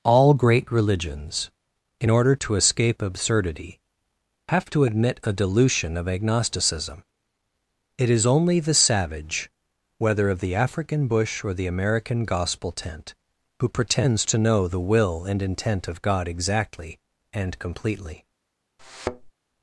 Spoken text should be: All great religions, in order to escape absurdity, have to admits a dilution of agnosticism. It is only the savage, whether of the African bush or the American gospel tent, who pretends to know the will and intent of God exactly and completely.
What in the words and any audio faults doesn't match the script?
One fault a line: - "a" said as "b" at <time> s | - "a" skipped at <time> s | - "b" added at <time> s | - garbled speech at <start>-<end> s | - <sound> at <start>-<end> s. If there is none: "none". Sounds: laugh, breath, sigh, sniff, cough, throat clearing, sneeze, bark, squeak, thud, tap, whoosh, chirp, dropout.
- "admits" said as "admit" at 4.9 s
- thud at 18.8-19.3 s